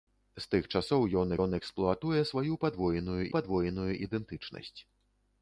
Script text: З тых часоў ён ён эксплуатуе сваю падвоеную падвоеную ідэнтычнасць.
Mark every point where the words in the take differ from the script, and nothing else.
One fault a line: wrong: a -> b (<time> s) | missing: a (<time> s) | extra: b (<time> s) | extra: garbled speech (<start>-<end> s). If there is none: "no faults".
no faults